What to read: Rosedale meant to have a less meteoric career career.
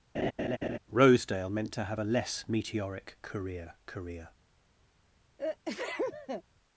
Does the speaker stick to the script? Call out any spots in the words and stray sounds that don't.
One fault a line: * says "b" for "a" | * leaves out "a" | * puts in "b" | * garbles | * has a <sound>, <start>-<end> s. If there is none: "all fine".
* has a laugh, 0.1-0.8 s
* has a sneeze, 5.4-6.4 s